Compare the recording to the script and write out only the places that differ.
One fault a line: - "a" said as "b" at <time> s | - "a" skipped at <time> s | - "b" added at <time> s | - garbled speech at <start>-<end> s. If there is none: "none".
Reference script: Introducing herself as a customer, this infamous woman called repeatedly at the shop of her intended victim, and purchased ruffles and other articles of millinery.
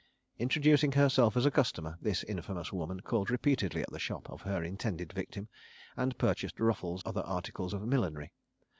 - "and" skipped at 7.0 s